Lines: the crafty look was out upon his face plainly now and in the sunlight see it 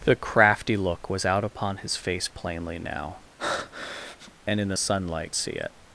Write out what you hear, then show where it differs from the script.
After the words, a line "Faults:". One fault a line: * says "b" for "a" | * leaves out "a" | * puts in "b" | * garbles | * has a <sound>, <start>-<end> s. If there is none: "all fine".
the crafty look was out upon his face plainly now and in the sunlight see it
Faults:
* has a breath, 3.4-4.3 s